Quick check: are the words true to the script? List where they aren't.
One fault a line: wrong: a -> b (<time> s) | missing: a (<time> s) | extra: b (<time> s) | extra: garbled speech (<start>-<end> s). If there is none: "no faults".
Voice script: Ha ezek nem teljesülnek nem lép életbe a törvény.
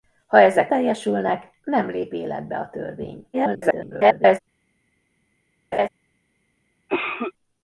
missing: nem (0.7 s)
extra: garbled speech (3.3-4.4 s)